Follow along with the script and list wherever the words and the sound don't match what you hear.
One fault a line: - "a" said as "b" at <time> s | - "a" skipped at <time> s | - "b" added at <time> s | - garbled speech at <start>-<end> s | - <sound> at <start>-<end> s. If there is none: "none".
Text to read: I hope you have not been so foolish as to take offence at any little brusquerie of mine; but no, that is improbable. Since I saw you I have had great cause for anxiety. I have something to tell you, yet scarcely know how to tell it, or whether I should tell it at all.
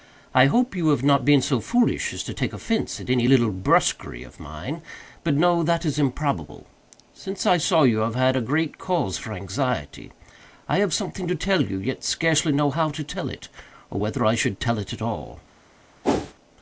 - whoosh at 16.0-16.3 s